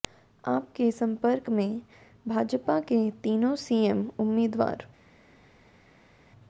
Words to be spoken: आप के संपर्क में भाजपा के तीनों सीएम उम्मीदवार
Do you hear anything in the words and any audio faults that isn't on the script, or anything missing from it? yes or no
no